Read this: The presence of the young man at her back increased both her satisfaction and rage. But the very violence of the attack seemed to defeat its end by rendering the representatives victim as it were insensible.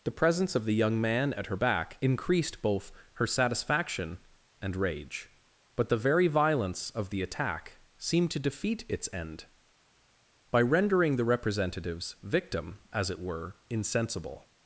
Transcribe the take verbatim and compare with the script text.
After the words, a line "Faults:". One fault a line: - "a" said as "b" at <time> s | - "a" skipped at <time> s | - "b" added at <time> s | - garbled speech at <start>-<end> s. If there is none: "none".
The presence of the young man at her back increased both her satisfaction and rage. But the very violence of the attack seemed to defeat its end by rendering the representatives victim as it were insensible.
Faults:
none